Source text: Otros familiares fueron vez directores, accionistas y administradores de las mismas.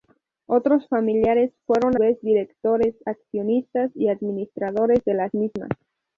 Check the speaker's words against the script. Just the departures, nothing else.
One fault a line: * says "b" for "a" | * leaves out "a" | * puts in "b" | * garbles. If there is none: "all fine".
all fine